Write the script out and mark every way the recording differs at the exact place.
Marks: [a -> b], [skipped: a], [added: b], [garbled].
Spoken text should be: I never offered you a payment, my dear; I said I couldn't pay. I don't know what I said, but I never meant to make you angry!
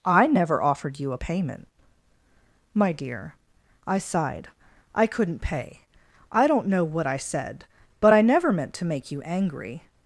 I never offered you a payment, my dear; I [said -> sighed] I couldn't pay. I don't know what I said, but I never meant to make you angry!